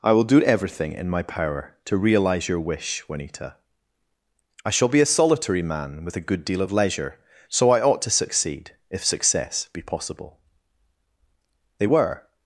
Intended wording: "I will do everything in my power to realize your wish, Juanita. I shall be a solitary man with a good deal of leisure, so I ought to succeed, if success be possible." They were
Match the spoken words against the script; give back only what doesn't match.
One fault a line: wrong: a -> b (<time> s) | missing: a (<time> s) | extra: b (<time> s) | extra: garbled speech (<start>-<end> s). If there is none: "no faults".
no faults